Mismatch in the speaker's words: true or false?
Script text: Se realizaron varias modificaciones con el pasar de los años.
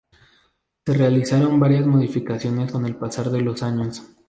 false